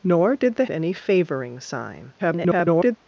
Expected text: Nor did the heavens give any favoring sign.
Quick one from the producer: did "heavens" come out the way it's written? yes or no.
no